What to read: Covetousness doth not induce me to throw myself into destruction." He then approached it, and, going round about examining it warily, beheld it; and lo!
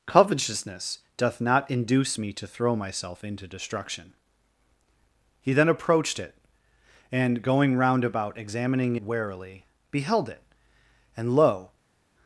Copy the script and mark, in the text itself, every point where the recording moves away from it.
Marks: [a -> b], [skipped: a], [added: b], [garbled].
Covetousness doth not induce me to throw myself into destruction." He then approached it, and, going round about examining [skipped: it] warily, beheld it; and lo!